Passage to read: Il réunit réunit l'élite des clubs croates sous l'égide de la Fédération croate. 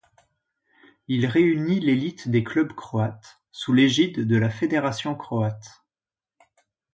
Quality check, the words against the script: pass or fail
fail